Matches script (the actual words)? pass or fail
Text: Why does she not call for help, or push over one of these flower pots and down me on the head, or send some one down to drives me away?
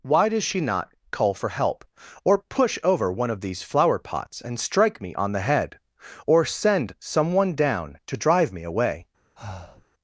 fail